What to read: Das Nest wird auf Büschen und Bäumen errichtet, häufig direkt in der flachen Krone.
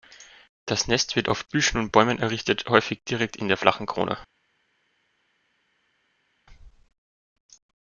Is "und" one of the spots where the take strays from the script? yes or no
no